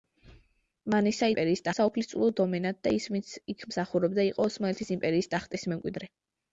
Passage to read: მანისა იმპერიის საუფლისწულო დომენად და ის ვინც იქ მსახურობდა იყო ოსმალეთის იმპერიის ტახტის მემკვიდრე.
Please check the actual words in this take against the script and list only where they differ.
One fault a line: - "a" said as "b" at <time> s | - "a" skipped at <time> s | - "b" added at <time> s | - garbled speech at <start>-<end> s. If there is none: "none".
none